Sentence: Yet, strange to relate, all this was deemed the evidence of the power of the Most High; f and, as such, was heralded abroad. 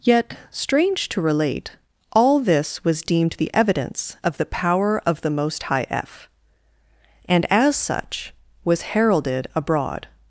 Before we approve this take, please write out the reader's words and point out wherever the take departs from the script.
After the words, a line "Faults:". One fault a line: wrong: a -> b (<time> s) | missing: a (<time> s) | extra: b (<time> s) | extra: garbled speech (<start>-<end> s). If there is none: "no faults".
Yet, strange to relate, all this was deemed the evidence of the power of the Most High; f and, as such, was heralded abroad.
Faults:
no faults